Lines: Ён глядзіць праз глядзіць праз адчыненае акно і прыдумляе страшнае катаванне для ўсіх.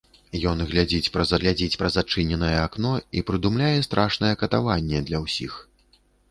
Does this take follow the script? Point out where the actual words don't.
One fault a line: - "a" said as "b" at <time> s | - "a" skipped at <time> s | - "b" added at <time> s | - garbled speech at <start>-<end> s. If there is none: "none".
none